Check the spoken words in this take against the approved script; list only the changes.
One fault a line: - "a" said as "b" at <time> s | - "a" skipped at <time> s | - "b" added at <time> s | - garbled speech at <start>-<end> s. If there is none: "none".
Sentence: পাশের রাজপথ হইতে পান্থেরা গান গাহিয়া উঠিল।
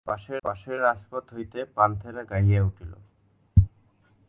- "পাশের" added at 0.4 s
- "গান" skipped at 2.2 s